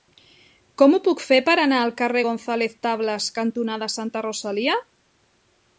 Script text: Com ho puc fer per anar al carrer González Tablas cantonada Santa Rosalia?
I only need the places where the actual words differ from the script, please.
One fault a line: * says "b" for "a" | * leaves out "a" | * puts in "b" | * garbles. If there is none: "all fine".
all fine